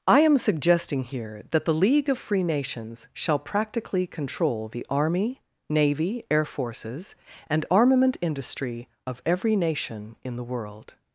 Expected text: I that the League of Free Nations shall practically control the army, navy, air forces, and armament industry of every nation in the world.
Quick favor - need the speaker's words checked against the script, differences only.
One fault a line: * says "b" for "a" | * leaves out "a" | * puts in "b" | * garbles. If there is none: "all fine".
* puts in "am suggesting here"